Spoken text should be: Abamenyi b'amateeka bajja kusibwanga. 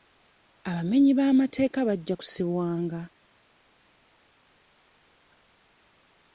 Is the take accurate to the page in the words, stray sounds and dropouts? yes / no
yes